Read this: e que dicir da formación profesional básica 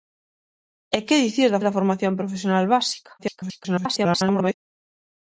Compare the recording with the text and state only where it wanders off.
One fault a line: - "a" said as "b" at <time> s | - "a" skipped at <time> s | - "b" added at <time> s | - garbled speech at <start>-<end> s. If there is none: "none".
- "da" added at 1.6 s
- garbled speech at 3.2-4.5 s